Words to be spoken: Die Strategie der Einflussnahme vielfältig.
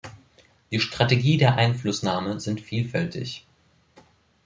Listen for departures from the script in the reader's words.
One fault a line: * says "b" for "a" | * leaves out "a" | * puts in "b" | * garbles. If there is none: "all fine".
* puts in "sind"